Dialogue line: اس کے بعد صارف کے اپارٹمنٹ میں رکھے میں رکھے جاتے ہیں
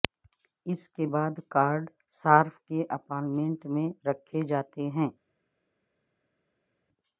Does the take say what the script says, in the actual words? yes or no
no